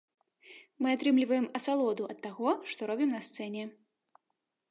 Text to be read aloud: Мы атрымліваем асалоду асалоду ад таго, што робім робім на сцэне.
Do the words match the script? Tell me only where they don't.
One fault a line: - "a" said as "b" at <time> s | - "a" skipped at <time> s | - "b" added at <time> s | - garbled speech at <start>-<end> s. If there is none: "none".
- "асалоду" skipped at 2.0 s
- "робім" skipped at 3.1 s